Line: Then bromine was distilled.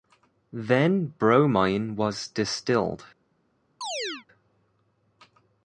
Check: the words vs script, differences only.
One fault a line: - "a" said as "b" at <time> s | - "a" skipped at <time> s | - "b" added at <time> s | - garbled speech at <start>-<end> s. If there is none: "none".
none